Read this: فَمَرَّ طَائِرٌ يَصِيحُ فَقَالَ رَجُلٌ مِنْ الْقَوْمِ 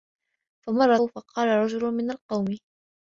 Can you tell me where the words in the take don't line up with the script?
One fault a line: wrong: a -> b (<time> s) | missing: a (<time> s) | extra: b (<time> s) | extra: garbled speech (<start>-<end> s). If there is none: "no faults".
missing: طَائِرٌ يَصِيحُ (1.0 s)